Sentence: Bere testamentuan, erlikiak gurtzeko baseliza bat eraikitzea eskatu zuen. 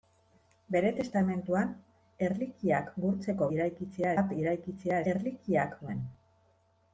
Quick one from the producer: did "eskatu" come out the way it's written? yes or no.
no